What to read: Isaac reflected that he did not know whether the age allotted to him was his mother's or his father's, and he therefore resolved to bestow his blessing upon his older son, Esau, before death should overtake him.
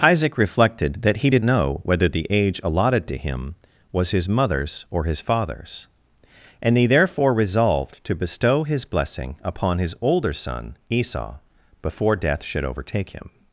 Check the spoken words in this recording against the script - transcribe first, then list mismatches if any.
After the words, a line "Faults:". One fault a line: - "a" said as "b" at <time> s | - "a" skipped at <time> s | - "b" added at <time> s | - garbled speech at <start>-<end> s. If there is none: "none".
Isaac reflected that he did know whether the age allotted to him was his mother's or his father's, and he therefore resolved to bestow his blessing upon his older son, Esau, before death should overtake him.
Faults:
- "not" skipped at 1.5 s